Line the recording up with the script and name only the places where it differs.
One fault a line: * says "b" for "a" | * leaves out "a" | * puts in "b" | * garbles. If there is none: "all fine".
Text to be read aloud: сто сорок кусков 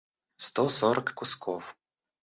all fine